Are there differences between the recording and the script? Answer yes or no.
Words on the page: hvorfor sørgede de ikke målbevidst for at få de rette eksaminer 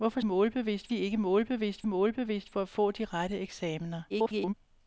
yes